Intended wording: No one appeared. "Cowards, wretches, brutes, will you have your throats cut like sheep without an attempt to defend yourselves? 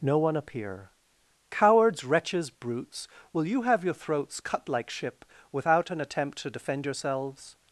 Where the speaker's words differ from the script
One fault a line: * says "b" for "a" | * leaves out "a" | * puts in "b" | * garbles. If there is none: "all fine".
* says "appear" for "appeared"
* says "ship" for "sheep"